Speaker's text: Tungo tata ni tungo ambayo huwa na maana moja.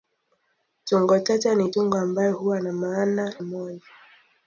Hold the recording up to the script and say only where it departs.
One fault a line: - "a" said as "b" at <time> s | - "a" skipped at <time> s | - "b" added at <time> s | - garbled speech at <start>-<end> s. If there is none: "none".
none